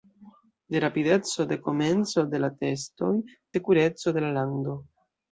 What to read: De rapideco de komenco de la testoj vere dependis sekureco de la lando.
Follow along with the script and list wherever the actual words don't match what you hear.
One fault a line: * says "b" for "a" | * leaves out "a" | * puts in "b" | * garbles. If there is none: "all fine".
* leaves out "vere dependis"